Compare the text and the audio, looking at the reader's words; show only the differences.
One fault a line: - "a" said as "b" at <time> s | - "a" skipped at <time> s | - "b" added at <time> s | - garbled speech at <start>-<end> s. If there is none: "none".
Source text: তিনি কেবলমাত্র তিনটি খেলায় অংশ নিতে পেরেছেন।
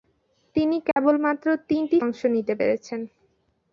- "খেলায়" skipped at 2.0 s